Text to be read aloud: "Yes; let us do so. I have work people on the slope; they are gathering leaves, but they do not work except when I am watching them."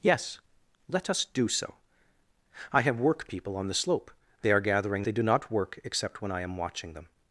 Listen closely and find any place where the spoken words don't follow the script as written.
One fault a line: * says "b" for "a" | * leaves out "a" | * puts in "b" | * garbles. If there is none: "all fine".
* leaves out "leaves but"